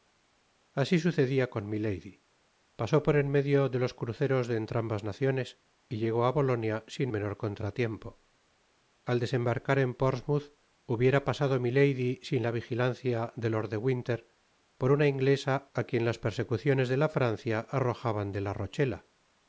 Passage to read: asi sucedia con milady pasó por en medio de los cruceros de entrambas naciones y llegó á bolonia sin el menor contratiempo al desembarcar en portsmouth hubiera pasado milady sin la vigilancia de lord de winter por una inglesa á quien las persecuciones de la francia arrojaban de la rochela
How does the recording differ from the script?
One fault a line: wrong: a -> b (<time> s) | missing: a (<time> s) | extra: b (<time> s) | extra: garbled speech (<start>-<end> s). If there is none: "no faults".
missing: el (7.1 s)